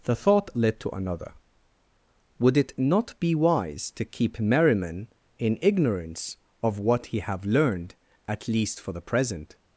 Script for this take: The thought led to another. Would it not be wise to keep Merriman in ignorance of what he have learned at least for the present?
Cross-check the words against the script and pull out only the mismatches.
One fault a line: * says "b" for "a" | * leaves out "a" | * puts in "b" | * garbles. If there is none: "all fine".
all fine